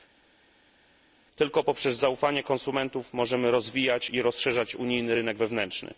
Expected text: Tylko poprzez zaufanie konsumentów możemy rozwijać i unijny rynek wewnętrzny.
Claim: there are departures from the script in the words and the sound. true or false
true